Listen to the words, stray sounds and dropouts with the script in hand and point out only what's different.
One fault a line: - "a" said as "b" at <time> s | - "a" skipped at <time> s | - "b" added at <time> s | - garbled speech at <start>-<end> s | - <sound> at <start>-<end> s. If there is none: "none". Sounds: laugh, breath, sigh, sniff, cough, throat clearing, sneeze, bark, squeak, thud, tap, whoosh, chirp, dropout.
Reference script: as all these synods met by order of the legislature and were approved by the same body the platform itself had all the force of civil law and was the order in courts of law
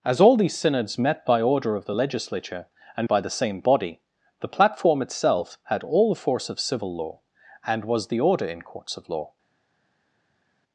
- "were approved" skipped at 3.1 s